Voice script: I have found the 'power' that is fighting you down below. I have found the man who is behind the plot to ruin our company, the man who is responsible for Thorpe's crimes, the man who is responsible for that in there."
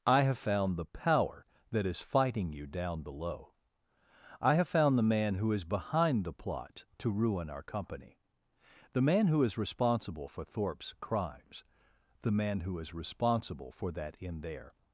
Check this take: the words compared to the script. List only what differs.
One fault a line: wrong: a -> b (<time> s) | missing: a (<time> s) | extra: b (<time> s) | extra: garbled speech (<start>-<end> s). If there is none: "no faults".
no faults